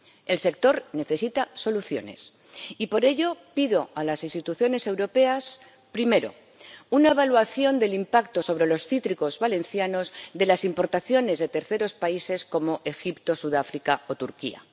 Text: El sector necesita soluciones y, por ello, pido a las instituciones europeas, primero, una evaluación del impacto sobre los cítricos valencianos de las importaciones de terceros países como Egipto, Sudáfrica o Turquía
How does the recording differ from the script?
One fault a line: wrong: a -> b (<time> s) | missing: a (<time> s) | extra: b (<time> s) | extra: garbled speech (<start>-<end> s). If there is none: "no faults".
no faults